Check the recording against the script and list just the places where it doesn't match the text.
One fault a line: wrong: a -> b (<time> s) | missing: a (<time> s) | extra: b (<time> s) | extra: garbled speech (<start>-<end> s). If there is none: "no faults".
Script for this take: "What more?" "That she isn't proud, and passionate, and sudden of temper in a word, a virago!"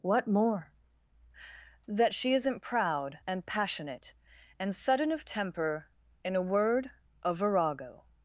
no faults